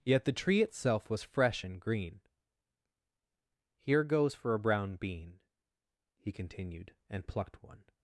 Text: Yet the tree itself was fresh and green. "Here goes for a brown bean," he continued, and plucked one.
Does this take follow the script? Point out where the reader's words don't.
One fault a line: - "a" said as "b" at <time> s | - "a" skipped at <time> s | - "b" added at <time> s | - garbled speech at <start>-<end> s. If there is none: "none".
none